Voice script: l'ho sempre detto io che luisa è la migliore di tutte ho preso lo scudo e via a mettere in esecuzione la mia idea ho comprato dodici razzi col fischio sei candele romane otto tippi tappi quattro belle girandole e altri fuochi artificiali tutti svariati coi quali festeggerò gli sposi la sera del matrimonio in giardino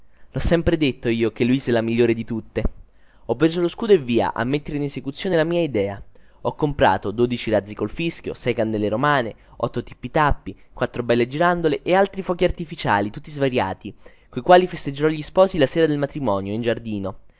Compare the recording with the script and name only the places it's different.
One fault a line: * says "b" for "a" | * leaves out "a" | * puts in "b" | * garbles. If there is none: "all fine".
all fine